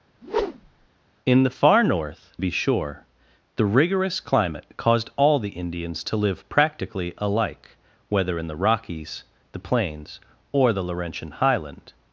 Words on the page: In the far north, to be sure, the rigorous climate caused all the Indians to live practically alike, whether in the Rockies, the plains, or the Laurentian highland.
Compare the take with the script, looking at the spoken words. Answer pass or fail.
fail